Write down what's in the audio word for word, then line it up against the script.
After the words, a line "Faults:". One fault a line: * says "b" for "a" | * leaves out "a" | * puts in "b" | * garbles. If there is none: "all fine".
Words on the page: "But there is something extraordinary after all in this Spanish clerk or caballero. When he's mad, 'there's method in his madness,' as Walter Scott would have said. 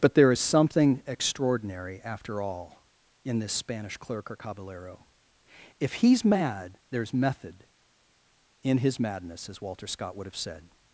"But there is something extraordinary after all in this Spanish clerk or caballero. If he's mad, 'there's method in his madness,' as Walter Scott would have said.
Faults:
* says "If" for "When"